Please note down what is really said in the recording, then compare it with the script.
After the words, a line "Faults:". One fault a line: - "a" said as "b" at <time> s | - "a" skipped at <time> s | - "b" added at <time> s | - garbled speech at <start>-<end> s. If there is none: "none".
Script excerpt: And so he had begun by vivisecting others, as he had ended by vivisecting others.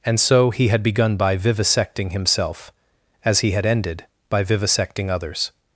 And so he had begun by vivisecting himself, as he had ended by vivisecting others.
Faults:
- "others" said as "himself" at 2.1 s